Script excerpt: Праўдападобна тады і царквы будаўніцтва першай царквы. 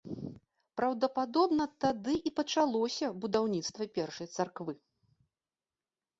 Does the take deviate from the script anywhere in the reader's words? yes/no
yes